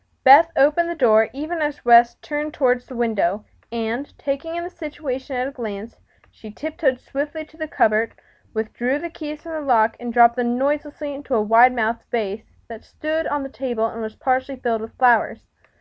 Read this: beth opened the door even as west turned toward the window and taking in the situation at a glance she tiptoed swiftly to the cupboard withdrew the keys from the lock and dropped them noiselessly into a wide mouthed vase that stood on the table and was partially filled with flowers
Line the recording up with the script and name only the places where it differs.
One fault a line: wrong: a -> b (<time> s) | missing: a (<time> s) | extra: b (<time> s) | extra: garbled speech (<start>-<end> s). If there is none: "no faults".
no faults